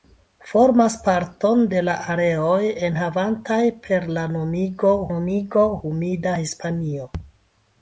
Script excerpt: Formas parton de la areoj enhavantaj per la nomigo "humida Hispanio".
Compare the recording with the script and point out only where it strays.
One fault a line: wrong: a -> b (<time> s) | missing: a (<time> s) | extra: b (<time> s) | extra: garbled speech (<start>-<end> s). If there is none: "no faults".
extra: nomigo (5.1 s)